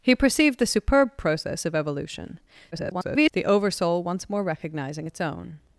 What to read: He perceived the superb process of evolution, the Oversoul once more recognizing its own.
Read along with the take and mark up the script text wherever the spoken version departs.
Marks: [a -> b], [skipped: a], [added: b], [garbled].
He perceived the superb process of evolution, [garbled] the Oversoul once more recognizing its own.